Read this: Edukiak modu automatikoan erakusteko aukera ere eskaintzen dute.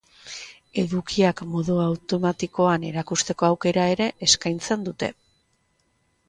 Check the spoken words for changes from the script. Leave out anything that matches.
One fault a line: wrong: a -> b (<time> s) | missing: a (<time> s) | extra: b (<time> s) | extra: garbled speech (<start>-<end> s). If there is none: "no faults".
no faults